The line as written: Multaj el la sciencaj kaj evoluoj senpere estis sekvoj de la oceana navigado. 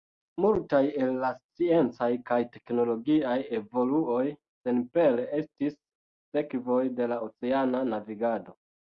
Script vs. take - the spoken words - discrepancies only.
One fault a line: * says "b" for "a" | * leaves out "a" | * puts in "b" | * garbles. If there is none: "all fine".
* puts in "teknologiaj"